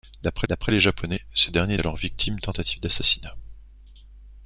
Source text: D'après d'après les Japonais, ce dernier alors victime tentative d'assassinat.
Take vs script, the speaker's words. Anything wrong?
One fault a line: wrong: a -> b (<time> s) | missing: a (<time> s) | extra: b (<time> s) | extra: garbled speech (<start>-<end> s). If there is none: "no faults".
no faults